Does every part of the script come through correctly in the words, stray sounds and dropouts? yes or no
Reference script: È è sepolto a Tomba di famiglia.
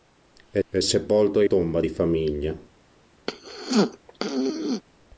no